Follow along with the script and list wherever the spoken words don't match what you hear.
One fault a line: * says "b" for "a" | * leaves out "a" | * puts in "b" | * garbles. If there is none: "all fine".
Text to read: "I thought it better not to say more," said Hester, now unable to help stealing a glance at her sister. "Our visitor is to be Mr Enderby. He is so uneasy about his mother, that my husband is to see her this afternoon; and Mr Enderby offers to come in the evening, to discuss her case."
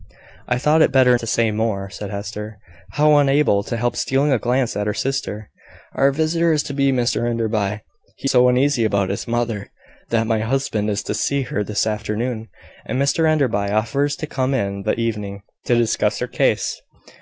* leaves out "not"
* leaves out "is"